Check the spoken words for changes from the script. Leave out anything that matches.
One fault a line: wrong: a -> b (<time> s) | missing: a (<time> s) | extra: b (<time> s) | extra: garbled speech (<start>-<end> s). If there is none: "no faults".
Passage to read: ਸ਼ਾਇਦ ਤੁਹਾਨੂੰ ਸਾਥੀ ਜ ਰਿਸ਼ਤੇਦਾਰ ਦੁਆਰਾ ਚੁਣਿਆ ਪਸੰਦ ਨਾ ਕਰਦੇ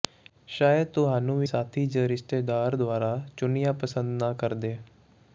no faults